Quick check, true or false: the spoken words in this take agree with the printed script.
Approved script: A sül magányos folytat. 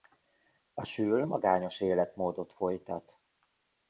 false